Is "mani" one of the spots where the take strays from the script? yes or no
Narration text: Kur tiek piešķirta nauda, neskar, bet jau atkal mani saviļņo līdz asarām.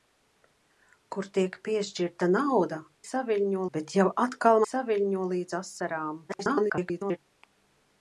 yes